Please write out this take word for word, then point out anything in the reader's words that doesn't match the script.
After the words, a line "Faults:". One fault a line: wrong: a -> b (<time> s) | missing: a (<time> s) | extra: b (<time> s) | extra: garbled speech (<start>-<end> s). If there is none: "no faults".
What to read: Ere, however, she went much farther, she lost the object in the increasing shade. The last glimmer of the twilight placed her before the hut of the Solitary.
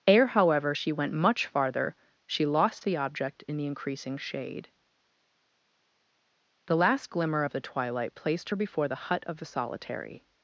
Ere, however, she went much farther, she lost the object in the increasing shade. The last glimmer of the twilight placed her before the hut of the Solitary.
Faults:
no faults